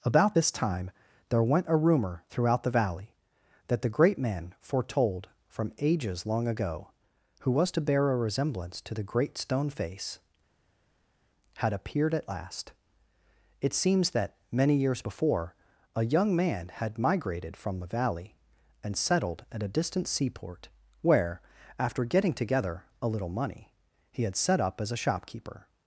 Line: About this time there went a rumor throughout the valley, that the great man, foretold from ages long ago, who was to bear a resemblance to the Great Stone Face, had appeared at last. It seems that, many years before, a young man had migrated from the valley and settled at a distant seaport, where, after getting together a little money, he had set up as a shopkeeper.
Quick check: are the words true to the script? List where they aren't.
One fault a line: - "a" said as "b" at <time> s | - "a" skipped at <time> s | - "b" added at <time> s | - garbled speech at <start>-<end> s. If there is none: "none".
none